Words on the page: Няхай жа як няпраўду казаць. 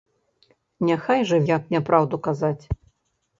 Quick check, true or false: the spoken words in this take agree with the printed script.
true